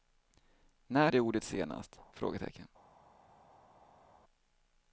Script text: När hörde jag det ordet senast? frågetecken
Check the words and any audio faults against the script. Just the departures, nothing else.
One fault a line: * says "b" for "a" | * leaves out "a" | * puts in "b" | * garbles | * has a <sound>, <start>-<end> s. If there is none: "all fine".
* leaves out "hörde"